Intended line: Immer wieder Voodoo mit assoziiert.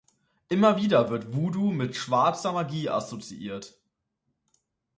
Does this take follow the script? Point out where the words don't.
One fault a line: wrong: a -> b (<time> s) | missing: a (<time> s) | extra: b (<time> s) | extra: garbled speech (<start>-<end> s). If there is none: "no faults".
extra: wird (1.1 s)
extra: schwarzer Magie (2.0 s)